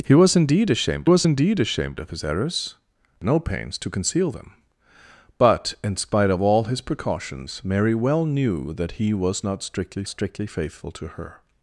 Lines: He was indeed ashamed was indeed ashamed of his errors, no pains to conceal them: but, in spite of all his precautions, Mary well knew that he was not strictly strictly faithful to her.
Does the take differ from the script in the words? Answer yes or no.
no